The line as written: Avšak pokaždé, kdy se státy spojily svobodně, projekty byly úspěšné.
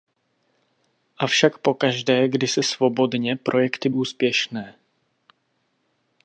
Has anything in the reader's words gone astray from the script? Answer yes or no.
yes